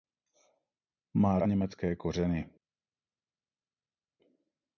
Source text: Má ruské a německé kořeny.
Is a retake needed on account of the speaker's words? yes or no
yes